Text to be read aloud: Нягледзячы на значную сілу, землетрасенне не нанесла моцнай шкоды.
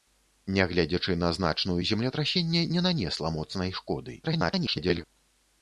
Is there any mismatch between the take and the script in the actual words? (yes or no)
yes